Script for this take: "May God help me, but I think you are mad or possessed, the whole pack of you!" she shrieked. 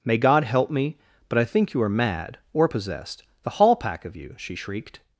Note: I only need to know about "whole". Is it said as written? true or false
false